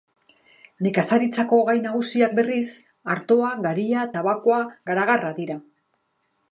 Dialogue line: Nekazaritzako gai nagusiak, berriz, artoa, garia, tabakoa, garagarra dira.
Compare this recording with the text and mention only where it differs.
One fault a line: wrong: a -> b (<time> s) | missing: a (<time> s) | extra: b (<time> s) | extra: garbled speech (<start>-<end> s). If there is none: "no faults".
no faults